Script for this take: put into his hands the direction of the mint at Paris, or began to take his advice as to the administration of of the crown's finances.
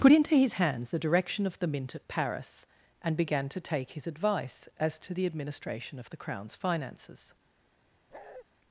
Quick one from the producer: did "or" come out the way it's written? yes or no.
no